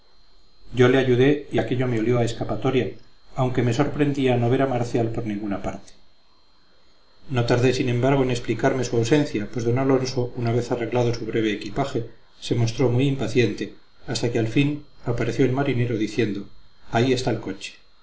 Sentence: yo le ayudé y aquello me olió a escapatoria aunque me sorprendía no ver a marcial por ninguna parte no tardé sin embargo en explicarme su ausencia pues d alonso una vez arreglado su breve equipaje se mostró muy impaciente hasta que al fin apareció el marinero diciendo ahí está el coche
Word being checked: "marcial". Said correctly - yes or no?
yes